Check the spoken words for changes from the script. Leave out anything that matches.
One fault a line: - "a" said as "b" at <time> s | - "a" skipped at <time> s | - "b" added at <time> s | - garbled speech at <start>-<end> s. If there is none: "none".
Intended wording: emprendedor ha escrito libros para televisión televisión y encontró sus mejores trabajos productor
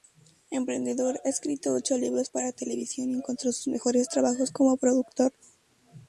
- "ocho" added at 1.8 s
- "televisión" skipped at 3.1 s
- "como" added at 4.5 s